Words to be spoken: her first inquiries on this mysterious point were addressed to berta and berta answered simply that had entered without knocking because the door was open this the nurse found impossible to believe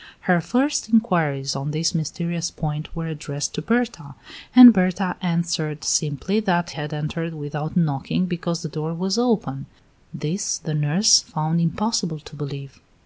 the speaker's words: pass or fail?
pass